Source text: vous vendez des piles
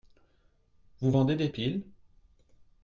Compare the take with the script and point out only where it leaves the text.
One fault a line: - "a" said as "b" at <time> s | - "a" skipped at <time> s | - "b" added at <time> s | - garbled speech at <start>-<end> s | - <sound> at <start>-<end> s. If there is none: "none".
none